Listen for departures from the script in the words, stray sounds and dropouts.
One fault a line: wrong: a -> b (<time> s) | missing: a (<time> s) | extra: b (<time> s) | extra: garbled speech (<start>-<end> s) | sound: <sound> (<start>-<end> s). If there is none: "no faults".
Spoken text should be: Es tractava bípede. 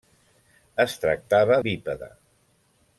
no faults